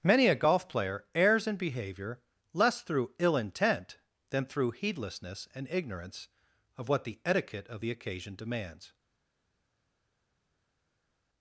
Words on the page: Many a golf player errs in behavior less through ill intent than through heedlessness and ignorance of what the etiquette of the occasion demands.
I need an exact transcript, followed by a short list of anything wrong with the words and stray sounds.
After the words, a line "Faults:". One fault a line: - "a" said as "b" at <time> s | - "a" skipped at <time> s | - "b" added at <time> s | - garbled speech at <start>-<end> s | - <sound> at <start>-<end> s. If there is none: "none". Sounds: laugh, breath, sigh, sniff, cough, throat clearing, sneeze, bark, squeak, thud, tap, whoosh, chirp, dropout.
Many a golf player errs in behavior less through ill intent than through heedlessness and ignorance of what the etiquette of the occasion demands.
Faults:
none